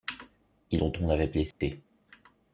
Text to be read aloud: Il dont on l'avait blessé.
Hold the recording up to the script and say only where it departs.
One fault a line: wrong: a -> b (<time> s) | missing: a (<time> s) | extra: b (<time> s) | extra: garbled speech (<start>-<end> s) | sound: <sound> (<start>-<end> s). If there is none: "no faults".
sound: dropout (1.5-1.6 s)